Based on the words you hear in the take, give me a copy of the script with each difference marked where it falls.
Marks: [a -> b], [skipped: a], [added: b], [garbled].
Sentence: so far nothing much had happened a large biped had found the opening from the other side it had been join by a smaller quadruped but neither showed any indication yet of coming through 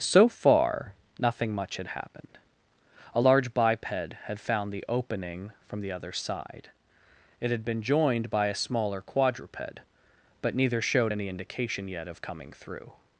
so far nothing much had happened a large biped had found the opening from the other side it had been [join -> joined] by a smaller quadruped but neither showed any indication yet of coming through